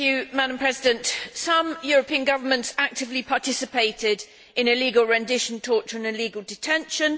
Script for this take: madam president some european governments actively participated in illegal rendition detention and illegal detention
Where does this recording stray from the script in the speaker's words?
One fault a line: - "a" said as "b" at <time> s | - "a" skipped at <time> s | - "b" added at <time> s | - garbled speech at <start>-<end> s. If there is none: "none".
- "detention" said as "torture" at 5.6 s